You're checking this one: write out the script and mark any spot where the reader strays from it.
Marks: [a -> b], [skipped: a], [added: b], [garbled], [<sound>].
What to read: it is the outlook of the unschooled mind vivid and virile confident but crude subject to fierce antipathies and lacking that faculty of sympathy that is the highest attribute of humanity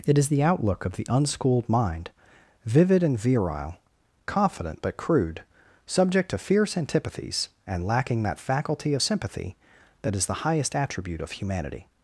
it is the outlook of the unschooled mind vivid and virile confident but crude subject to fierce antipathies and lacking that faculty of sympathy that is the highest attribute of humanity